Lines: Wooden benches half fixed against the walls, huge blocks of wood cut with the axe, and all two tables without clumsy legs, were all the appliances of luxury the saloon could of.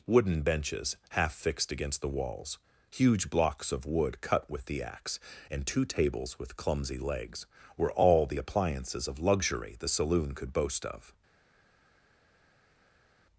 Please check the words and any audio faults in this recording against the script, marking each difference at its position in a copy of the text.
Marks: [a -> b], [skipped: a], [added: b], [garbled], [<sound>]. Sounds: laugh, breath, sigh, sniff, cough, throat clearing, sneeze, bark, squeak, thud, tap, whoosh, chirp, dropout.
Wooden benches half fixed against the walls, huge blocks of wood cut with the axe, and [skipped: all] two tables [without -> with] clumsy legs, were all the appliances of luxury the saloon could [added: boast] of.